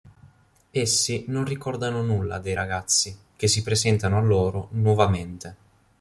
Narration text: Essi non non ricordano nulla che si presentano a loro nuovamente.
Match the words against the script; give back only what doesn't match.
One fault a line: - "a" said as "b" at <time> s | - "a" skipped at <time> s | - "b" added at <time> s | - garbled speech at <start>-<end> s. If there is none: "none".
- "non" skipped at 1.4 s
- "dei ragazzi" added at 2.4 s